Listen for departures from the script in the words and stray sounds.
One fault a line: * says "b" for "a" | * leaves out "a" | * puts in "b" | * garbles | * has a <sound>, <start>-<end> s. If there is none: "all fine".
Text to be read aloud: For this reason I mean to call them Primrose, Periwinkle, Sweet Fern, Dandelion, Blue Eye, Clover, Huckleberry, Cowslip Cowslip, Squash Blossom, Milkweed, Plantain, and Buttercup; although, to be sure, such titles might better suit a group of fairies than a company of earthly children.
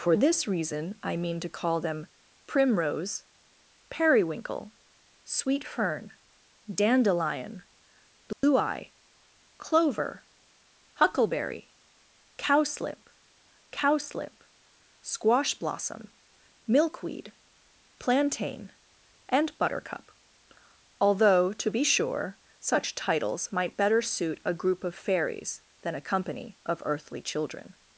* has a dropout, 8.3-8.4 s